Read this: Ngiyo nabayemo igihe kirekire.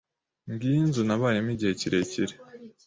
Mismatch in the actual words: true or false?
true